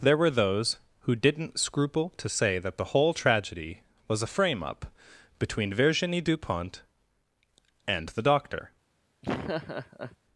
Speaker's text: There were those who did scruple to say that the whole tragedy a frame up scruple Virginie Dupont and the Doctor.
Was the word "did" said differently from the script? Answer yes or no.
yes